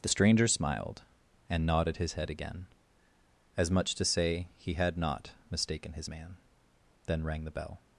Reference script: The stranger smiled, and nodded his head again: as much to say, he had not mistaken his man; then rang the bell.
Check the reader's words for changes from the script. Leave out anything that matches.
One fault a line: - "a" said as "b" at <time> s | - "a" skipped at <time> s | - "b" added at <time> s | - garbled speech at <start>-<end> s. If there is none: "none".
none